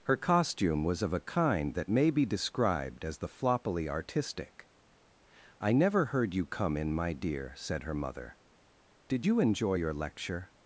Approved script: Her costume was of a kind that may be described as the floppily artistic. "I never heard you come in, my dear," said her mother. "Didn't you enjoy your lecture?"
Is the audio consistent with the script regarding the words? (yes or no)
no